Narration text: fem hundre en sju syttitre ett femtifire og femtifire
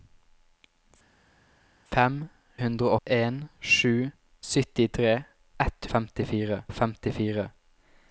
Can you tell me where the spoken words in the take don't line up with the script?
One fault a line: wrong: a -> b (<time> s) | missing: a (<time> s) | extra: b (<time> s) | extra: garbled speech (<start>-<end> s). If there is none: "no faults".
no faults